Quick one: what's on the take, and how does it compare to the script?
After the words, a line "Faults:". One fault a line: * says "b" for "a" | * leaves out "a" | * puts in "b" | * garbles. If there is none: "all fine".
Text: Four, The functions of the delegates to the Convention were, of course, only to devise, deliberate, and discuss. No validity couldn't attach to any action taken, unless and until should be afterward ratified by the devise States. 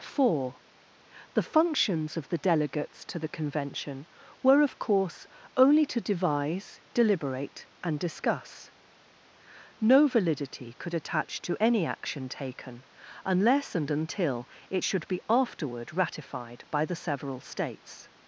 Four, The functions of the delegates to the Convention were, of course, only to devise, deliberate, and discuss. No validity could attach to any action taken, unless and until it should be afterward ratified by the several States.
Faults:
* says "could" for "couldn't"
* puts in "it"
* says "several" for "devise"